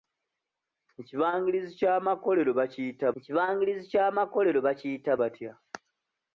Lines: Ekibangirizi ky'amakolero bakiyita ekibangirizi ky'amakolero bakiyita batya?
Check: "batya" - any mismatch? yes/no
no